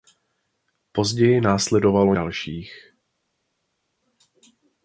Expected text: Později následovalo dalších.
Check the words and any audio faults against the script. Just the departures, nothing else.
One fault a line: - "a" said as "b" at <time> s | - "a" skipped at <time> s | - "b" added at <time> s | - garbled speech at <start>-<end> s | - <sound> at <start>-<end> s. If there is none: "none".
none